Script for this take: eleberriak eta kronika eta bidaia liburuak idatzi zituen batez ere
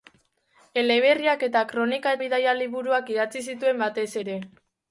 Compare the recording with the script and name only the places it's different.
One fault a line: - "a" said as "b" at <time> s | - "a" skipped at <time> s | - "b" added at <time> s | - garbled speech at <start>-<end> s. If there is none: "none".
- "eta" skipped at 2.1 s